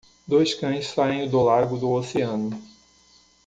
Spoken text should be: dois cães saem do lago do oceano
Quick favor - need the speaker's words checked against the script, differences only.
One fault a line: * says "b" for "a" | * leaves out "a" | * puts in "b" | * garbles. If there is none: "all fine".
all fine